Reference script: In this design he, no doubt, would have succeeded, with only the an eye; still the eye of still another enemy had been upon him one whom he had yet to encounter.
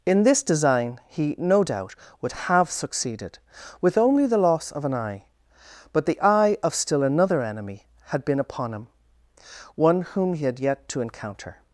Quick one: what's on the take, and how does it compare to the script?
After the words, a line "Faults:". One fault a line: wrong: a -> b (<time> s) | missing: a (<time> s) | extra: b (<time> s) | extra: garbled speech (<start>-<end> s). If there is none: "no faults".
In this design he, no doubt, would have succeeded, with only the loss of an eye; but the eye of still another enemy had been upon him one whom he had yet to encounter.
Faults:
extra: loss of (4.4 s)
wrong: still -> but (5.9 s)